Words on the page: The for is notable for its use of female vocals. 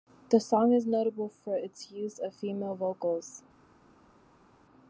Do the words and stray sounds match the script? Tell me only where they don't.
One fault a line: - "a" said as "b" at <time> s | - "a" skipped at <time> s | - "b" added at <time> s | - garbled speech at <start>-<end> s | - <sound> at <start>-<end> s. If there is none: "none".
- "for" said as "song" at 0.4 s